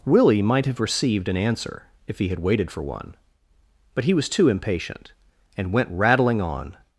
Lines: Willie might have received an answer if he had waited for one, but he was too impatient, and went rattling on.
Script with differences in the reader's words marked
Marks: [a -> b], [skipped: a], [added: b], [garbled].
Willie might have received an answer if he had waited for one, but he was too impatient, and went rattling on.